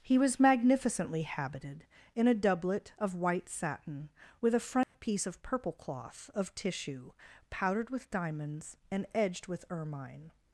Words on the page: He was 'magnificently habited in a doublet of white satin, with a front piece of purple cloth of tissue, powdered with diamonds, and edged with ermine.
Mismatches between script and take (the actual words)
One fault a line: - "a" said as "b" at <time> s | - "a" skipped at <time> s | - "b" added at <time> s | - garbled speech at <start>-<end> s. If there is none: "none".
none